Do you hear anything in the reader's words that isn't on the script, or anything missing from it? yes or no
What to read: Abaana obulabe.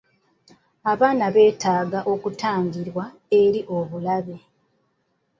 yes